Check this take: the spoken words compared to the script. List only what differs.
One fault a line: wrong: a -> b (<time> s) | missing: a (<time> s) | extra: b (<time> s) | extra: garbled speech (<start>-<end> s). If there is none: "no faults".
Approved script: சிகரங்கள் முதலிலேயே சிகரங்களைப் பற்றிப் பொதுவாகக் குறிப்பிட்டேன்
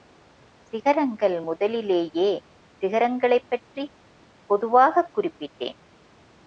no faults